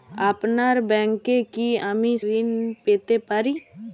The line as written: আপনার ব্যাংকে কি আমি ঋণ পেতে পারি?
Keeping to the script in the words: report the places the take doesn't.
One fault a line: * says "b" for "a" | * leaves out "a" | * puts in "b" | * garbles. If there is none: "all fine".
all fine